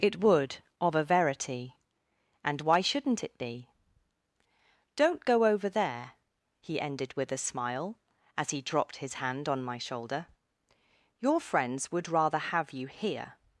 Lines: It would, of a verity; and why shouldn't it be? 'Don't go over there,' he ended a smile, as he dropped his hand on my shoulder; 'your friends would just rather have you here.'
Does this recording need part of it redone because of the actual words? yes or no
yes